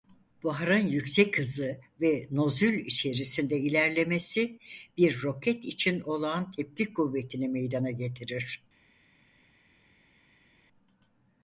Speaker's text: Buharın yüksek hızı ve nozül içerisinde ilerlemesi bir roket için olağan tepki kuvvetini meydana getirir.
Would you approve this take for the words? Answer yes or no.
yes